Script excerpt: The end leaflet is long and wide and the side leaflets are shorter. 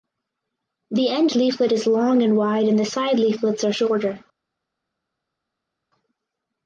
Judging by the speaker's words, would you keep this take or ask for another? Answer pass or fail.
pass